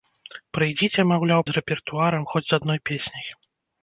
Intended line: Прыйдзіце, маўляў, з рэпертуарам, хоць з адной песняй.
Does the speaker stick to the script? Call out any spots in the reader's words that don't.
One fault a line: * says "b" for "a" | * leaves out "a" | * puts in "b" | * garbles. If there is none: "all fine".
all fine